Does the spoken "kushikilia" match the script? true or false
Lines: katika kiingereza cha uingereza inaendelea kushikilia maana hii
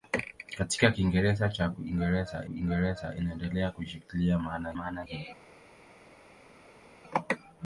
true